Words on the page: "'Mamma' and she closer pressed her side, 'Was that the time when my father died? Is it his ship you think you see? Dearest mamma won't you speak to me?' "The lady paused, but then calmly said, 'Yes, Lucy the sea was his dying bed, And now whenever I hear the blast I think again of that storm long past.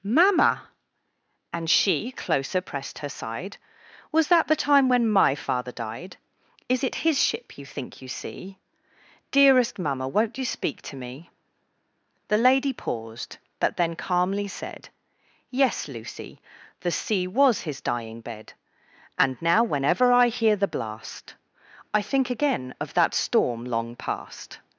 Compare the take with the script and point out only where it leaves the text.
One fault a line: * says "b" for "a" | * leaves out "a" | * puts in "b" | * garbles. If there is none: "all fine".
all fine